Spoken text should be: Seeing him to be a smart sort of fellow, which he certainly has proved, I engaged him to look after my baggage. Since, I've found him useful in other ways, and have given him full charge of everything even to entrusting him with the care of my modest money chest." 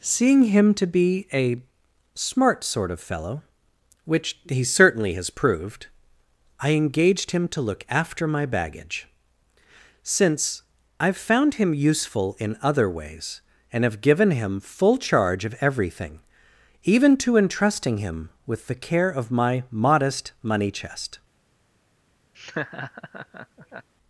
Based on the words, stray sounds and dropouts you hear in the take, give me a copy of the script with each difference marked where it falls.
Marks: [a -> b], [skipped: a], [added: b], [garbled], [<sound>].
Seeing him to be a smart sort of fellow, which he certainly has proved, I engaged him to look after my baggage. Since, I've found him useful in other ways, and have given him full charge of everything even to entrusting him with the care of my modest money chest." [laugh]